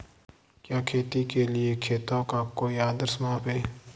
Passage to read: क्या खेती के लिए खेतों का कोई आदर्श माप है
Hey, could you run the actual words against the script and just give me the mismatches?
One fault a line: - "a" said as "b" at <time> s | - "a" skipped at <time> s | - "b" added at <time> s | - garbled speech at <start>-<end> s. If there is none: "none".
none